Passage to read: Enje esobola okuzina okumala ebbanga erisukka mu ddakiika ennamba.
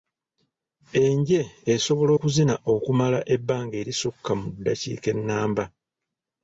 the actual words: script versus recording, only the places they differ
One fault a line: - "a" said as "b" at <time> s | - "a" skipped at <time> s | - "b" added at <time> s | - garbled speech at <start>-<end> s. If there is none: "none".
none